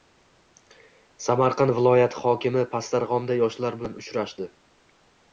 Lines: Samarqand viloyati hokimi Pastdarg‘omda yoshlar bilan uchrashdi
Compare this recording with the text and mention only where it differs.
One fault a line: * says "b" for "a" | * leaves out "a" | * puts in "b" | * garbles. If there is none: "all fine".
all fine